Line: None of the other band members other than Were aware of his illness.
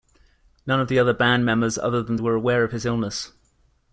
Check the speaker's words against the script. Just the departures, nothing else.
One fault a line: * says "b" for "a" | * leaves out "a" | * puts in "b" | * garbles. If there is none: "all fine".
all fine